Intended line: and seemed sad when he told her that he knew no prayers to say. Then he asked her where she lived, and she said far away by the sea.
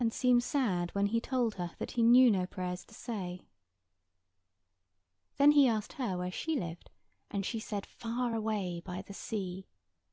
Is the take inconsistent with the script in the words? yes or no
no